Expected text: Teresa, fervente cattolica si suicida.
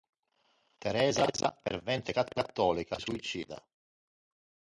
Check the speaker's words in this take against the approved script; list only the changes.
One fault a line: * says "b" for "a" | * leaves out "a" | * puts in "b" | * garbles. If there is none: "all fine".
* leaves out "si"